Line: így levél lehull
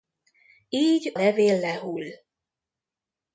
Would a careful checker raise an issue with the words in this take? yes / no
no